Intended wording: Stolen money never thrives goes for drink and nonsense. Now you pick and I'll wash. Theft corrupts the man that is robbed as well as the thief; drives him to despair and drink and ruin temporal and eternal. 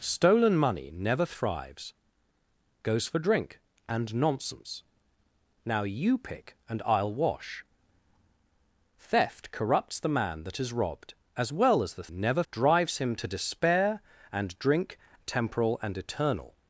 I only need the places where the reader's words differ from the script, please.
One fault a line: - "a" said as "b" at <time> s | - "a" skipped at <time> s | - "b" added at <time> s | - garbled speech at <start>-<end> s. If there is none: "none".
- "thief" said as "never" at 12.1 s
- "and ruin" skipped at 15.0 s